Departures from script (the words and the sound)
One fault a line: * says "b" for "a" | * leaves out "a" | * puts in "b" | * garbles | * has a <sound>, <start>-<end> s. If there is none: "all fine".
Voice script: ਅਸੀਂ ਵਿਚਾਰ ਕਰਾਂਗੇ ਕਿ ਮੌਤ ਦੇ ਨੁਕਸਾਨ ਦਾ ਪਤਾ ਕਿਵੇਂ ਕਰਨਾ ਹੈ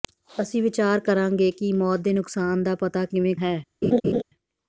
* leaves out "ਕਰਨਾ"
* has a laugh, 3.8-4.2 s